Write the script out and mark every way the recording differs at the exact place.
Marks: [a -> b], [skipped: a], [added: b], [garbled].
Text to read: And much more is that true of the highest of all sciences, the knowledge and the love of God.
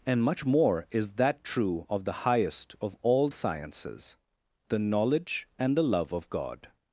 And much more is that true of the highest of all sciences, the knowledge and the love of God.